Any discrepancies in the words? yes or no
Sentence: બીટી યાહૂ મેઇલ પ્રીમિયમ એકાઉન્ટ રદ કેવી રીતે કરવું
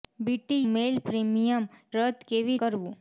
yes